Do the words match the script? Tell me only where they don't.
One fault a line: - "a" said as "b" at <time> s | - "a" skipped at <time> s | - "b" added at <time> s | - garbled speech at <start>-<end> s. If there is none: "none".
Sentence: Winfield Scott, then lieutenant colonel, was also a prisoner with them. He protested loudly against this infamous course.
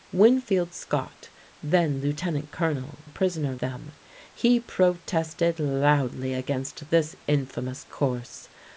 - "was also" skipped at 3.0 s
- "with" skipped at 3.6 s